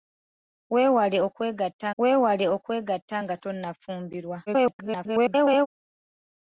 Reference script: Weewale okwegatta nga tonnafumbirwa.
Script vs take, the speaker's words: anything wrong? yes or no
yes